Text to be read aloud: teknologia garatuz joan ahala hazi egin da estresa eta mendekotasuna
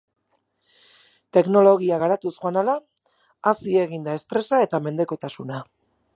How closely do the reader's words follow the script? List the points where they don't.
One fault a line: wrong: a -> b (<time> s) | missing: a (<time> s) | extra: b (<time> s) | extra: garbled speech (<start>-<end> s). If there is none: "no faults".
no faults